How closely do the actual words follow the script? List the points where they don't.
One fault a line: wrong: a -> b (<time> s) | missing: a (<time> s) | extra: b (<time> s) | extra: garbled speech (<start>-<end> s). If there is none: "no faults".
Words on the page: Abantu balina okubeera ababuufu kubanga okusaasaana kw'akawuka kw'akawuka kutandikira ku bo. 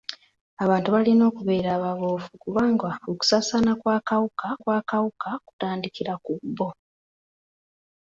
no faults